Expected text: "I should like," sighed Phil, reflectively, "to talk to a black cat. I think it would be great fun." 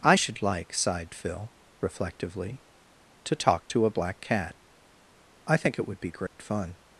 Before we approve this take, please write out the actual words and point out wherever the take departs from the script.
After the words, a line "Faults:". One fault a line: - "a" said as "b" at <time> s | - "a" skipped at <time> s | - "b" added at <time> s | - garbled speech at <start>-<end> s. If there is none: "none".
"I should like," sighed Phil, reflectively, "to talk to a black cat. I think it would be great fun."
Faults:
none